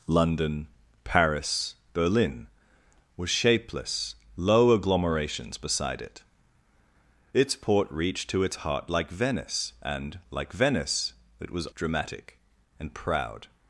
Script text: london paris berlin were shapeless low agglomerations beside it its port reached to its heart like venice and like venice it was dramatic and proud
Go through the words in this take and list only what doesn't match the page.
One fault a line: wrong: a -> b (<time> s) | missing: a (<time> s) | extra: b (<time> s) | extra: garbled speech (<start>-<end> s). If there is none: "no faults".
no faults